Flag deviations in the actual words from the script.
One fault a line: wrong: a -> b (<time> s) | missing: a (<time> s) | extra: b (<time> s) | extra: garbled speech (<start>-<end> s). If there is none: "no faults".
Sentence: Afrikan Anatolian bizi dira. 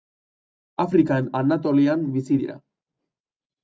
no faults